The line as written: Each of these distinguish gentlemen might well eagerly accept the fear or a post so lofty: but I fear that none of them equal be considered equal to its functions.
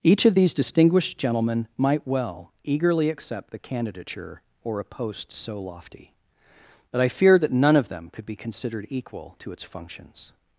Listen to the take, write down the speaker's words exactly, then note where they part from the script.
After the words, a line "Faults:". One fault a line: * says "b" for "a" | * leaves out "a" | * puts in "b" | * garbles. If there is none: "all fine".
Each of these distinguished gentlemen might well eagerly accept the candidature or a post so lofty: but I fear that none of them could be considered equal to its functions.
Faults:
* says "distinguished" for "distinguish"
* says "candidature" for "fear"
* says "could" for "equal"